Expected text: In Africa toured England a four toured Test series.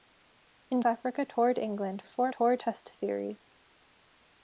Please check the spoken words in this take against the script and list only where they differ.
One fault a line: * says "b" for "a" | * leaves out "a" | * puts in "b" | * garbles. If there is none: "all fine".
all fine